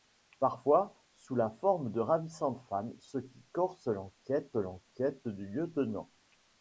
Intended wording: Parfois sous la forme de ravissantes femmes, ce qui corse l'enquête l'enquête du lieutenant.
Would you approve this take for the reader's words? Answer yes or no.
yes